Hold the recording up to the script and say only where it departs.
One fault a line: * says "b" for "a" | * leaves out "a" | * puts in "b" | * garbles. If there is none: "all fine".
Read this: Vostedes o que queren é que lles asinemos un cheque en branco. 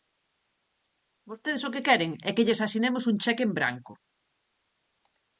all fine